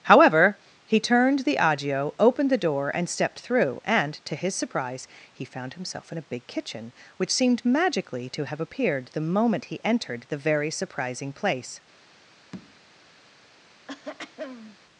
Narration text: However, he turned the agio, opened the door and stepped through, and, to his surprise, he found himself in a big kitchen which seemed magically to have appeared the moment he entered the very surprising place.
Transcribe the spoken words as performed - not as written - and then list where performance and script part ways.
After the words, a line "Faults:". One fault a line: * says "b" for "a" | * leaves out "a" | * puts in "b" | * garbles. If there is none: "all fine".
However, he turned the agio, opened the door and stepped through, and, to his surprise, he found himself in a big kitchen which seemed magically to have appeared the moment he entered the very surprising place.
Faults:
all fine